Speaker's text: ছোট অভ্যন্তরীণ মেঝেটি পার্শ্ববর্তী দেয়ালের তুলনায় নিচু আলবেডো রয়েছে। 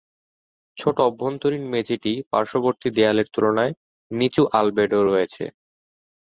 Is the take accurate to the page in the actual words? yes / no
yes